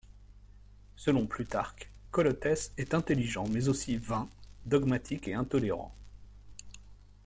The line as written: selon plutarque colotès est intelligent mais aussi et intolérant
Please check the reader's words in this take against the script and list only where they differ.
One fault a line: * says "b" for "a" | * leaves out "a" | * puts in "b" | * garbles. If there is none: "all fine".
* puts in "vain dogmatique"